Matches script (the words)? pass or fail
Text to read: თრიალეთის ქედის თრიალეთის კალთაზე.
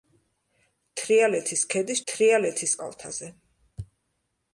pass